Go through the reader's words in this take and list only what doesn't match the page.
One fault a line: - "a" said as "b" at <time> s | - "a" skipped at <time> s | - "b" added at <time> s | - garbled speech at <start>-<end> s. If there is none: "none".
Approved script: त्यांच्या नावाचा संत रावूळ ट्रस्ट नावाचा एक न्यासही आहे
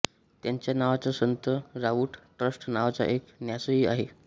none